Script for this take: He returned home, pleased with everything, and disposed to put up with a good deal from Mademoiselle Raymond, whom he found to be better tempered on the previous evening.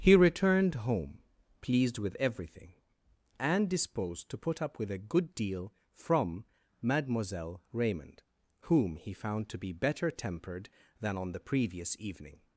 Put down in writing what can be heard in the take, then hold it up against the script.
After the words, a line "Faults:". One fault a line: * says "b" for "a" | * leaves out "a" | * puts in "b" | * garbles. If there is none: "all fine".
He returned home, pleased with everything, and disposed to put up with a good deal from Mademoiselle Raymond, whom he found to be better tempered than on the previous evening.
Faults:
* puts in "than"